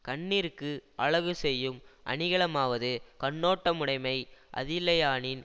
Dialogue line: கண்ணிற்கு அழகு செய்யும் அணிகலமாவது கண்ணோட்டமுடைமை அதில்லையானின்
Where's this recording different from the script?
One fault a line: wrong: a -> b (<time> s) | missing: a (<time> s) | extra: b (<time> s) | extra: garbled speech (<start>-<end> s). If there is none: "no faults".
no faults